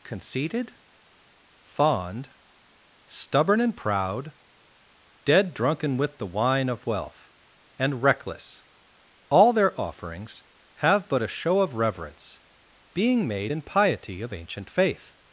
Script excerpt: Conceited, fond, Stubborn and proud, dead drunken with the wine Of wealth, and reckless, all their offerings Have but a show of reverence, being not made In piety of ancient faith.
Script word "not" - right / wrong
wrong